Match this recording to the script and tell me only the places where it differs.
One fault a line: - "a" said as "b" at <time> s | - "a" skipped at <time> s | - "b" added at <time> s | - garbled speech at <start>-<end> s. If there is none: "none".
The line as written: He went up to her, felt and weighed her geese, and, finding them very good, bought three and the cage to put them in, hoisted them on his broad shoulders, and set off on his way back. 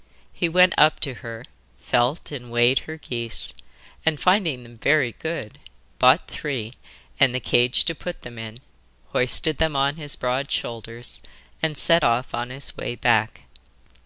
none